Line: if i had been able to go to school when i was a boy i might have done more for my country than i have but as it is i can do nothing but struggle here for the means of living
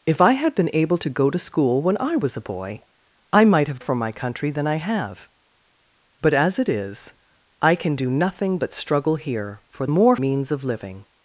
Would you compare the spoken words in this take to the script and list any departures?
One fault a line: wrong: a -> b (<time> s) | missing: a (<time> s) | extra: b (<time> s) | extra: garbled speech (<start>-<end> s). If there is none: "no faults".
missing: done more (3.8 s)
wrong: the -> more (9.9 s)